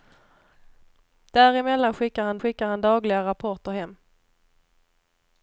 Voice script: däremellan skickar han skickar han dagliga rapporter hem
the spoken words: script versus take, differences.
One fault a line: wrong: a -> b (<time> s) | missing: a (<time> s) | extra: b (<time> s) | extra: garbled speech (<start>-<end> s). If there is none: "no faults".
no faults